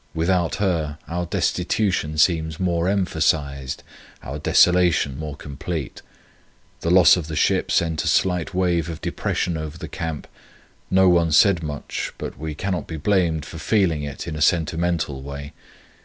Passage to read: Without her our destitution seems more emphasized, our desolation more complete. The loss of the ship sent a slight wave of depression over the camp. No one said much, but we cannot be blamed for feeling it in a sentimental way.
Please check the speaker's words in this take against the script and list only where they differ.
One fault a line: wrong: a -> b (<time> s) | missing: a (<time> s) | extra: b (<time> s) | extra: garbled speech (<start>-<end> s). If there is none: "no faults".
no faults